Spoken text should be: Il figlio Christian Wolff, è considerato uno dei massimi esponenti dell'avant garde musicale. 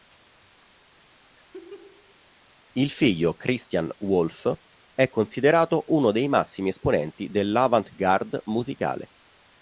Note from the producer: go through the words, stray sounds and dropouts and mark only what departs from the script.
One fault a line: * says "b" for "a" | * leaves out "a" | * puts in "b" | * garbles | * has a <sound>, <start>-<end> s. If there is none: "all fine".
* has a laugh, 1.4-2.2 s